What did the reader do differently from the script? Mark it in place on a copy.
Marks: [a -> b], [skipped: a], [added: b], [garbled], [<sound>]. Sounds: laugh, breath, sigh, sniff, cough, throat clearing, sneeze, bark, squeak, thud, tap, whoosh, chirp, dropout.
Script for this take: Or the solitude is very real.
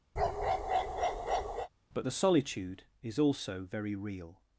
[bark] [Or -> But] the solitude is [added: also] very real.